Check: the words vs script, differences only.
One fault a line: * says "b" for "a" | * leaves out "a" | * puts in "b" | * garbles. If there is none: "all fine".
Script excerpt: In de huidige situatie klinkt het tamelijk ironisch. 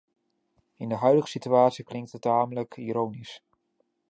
all fine